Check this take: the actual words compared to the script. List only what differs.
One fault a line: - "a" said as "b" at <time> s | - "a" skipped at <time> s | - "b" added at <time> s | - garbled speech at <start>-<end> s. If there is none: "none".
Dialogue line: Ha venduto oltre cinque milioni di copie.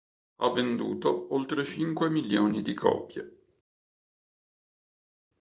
none